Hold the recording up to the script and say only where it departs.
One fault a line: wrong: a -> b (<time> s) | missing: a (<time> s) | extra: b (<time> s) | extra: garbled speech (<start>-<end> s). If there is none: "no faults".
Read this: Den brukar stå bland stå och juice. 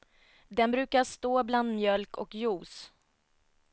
wrong: stå -> mjölk (1.8 s)